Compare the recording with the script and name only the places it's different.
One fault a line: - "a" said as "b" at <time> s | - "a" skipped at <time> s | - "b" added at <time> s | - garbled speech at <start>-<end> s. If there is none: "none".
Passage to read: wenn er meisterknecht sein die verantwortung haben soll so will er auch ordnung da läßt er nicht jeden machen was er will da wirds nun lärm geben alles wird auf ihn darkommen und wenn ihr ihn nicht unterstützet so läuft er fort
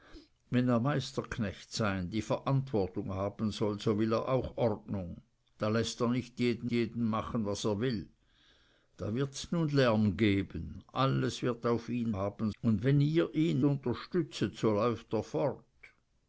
- "jeden" added at 6.7 s
- "darkommen" said as "haben" at 12.1 s
- "nicht" skipped at 13.6 s